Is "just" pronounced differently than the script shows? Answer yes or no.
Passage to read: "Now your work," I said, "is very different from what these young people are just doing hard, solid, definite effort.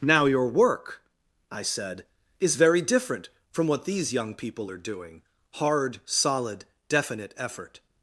yes